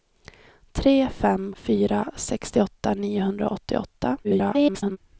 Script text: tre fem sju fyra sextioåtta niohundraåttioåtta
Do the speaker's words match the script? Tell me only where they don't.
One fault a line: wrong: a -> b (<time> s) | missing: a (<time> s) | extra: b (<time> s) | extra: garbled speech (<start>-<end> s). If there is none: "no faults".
missing: sju (1.5 s)
extra: garbled speech (4.2-5.0 s)